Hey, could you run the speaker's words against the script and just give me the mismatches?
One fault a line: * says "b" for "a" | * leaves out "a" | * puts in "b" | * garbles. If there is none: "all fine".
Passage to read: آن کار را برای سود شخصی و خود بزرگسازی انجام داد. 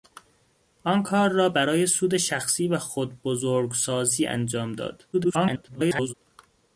* garbles